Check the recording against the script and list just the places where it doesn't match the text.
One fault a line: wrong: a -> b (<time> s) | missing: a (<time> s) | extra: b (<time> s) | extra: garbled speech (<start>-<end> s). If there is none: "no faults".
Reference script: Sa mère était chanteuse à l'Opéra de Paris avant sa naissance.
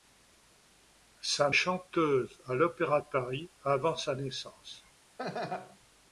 missing: mère était (1.5 s)